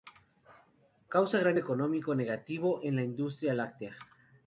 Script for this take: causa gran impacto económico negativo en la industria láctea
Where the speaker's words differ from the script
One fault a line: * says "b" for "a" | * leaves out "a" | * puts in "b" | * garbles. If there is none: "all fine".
* leaves out "impacto"